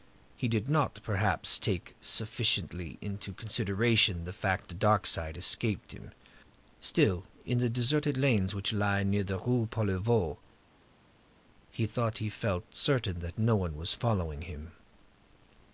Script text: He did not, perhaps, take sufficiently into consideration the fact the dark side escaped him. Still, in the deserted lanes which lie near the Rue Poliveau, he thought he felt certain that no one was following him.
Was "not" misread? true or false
false